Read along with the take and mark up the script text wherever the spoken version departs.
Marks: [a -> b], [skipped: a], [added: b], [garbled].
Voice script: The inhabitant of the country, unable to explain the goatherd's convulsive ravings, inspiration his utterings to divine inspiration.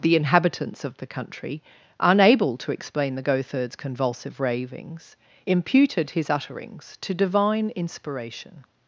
The [inhabitant -> inhabitants] of the country, unable to explain the goatherd's convulsive ravings, [inspiration -> imputed] his utterings to divine inspiration.